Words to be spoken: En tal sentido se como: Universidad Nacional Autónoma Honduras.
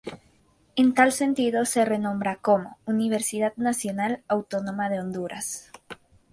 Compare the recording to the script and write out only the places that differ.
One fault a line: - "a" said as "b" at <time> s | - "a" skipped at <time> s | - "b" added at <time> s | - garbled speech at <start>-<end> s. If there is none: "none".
- "renombra" added at 1.9 s
- "de" added at 4.9 s